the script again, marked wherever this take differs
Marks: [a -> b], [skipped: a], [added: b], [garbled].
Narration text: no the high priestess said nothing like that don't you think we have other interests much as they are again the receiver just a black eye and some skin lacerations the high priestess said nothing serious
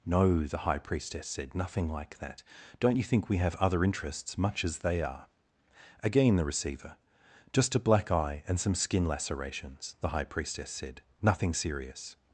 no the high priestess said nothing like that don't you think we have other interests much as they are again the receiver just a black eye and some skin lacerations the high priestess said nothing serious